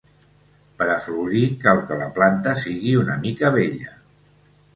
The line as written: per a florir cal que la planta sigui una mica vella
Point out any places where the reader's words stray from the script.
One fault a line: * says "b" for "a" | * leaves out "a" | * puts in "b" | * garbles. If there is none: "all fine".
all fine